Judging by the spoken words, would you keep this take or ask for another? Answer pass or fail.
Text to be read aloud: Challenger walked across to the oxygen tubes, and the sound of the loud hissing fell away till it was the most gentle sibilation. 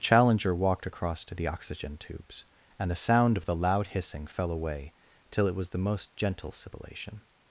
pass